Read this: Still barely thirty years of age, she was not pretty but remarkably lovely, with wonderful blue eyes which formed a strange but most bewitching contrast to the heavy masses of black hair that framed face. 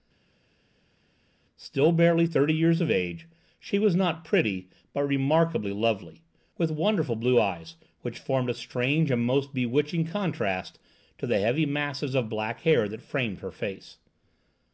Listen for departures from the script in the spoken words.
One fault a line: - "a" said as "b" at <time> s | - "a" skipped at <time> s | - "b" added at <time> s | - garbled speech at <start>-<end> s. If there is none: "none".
- "but" said as "and" at 9.1 s
- "her" added at 13.4 s